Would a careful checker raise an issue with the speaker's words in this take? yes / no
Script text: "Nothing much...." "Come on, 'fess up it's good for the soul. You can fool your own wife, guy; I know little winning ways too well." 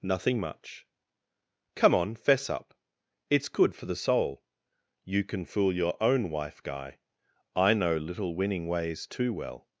no